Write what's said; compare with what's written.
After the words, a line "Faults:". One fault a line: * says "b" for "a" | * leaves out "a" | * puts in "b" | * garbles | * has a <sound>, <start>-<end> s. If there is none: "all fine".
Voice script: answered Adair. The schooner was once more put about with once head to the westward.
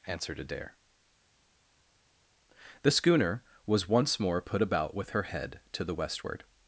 answered Adair. The schooner was once more put about with her head to the westward.
Faults:
* says "her" for "once"